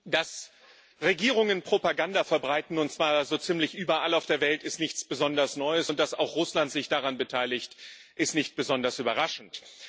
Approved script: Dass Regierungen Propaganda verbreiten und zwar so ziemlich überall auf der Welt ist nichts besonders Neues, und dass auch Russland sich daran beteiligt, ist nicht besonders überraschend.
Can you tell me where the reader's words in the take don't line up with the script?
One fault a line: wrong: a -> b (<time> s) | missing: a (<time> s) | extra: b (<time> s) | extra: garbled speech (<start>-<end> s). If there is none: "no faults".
no faults